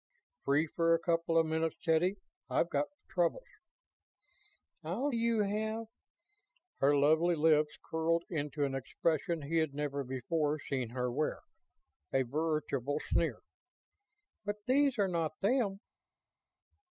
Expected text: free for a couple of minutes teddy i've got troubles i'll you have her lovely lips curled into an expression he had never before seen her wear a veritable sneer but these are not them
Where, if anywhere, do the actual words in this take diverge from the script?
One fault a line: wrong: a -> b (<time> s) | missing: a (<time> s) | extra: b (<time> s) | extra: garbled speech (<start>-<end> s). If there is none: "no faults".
no faults